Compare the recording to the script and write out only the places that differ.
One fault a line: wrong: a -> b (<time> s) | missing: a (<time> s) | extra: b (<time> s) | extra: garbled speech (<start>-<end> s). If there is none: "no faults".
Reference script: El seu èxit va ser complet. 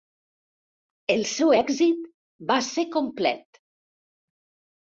no faults